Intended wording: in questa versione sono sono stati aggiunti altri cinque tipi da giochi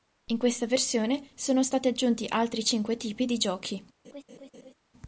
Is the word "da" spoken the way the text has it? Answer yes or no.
no